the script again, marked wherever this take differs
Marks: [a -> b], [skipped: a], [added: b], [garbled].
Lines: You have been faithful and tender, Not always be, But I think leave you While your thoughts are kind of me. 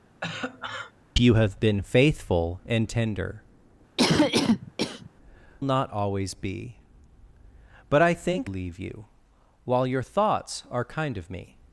You have been faithful and tender, Not always be, But I think leave you While your thoughts are kind of me.